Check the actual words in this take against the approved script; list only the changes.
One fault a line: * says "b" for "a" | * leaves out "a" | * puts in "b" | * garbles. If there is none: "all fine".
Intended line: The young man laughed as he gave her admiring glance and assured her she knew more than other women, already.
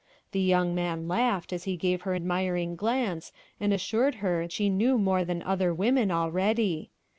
all fine